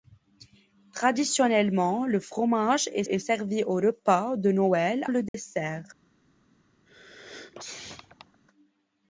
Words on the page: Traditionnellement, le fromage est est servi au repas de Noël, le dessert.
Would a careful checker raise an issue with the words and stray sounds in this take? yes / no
yes